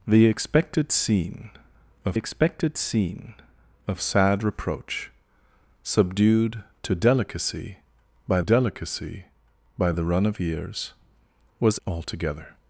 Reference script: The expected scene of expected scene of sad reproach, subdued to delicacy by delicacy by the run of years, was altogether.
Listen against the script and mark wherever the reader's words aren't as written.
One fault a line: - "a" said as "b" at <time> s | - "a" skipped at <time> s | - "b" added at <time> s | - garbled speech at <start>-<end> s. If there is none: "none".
none